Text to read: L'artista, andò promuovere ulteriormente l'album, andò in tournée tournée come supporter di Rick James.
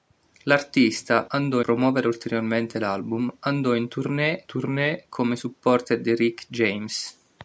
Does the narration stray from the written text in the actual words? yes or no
no